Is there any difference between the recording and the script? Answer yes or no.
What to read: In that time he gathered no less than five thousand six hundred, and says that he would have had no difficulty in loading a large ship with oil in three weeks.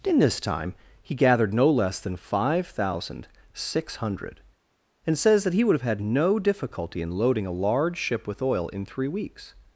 yes